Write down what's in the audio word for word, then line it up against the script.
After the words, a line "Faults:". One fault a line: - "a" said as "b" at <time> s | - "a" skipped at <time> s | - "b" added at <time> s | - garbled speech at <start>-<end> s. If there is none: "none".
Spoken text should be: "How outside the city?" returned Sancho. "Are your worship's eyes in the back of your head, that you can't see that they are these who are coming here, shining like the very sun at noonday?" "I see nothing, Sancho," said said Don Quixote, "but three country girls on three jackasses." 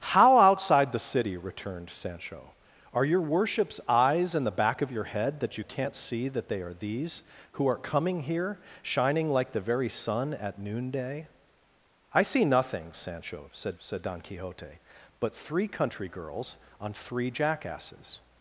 "How outside the city?" returned Sancho. "Are your worship's eyes in the back of your head, that you can't see that they are these who are coming here, shining like the very sun at noonday?" "I see nothing, Sancho," said said Don Quixote, "but three country girls on three jackasses."
Faults:
none